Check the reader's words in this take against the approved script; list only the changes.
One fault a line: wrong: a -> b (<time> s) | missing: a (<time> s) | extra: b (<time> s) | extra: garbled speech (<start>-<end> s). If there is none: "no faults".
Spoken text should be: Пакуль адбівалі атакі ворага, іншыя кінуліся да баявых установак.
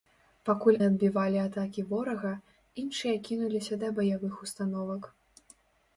no faults